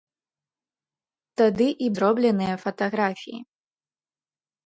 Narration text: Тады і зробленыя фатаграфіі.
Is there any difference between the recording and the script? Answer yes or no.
no